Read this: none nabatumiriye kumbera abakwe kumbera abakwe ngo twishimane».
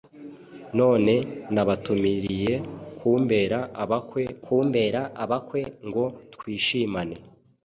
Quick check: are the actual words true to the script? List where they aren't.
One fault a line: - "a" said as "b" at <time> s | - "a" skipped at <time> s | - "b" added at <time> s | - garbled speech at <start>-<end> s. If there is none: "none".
none